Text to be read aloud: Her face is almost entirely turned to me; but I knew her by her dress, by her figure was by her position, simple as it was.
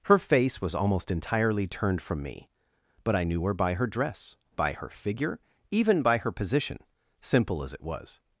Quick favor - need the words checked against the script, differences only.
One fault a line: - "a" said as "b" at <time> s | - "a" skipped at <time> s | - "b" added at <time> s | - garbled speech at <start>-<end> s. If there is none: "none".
- "is" said as "was" at 0.6 s
- "to" said as "from" at 2.0 s
- "was" said as "even" at 5.7 s